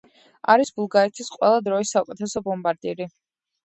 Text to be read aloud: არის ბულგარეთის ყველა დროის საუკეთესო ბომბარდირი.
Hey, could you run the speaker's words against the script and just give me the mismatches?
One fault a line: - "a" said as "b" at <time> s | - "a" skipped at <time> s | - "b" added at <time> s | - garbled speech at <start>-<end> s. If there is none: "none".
none